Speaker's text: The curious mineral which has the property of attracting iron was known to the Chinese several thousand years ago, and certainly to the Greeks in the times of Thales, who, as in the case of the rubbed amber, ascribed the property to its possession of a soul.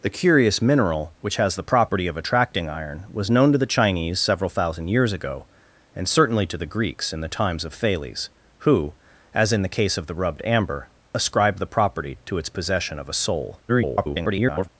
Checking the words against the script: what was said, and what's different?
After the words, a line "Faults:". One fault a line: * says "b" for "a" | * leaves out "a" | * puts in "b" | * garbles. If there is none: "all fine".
The curious mineral which has the property of attracting iron was known to the Chinese several thousand years ago, and certainly to the Greeks in the times of Thales, who, as in the case of the rubbed amber, ascribed the property to its possession of a soul. [garbled]
Faults:
* garbles